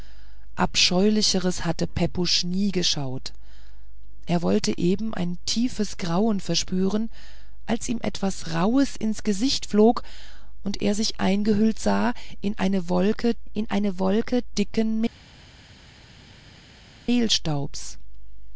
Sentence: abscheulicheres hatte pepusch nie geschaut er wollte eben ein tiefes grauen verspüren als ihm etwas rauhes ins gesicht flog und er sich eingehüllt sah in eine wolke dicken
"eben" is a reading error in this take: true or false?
false